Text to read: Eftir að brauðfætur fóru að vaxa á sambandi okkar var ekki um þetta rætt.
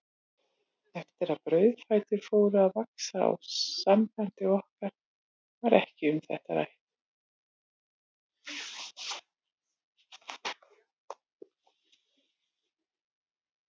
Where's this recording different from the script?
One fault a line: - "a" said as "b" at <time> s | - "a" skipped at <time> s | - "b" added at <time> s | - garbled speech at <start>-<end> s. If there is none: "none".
none